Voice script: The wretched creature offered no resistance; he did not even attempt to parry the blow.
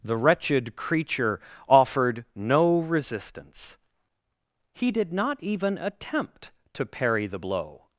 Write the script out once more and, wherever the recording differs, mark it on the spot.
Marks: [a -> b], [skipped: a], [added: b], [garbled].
The wretched creature offered no resistance; he did not even attempt to parry the blow.